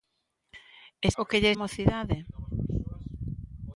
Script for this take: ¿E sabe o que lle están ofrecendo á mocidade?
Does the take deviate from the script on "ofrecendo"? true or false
true